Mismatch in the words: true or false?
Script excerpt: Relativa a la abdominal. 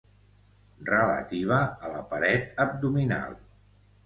true